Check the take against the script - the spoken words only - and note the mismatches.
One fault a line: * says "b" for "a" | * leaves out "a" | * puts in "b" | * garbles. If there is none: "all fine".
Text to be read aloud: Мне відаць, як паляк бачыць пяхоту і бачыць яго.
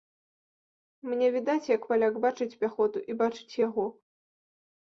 all fine